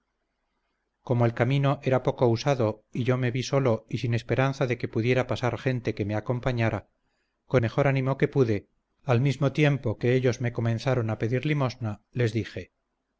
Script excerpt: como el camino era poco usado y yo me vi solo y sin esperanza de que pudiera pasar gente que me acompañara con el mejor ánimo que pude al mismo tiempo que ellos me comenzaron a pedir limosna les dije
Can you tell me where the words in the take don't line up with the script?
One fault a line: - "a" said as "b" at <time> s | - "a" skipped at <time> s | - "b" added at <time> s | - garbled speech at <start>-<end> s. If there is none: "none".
- "el" skipped at 7.6 s